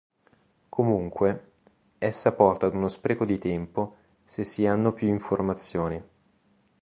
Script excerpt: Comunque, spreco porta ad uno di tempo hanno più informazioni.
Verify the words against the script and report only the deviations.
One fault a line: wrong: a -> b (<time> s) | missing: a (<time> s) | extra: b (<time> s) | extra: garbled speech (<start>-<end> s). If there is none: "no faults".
wrong: spreco -> essa (2.0 s)
extra: spreco (2.9 s)
extra: se si (4.2 s)